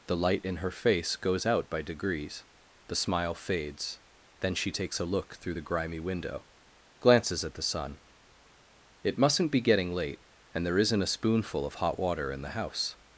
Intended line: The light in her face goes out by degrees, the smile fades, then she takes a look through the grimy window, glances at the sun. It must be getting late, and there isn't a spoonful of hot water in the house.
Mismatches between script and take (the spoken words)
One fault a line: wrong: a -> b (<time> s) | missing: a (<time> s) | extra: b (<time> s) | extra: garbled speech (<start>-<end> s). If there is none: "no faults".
wrong: must -> mustn't (9.2 s)